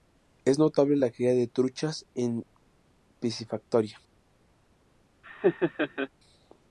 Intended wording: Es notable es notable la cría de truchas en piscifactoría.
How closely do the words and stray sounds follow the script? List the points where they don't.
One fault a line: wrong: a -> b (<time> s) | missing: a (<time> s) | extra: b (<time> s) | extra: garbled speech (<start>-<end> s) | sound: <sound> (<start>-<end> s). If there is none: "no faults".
missing: es notable (1.0 s)
sound: laugh (5.2-6.1 s)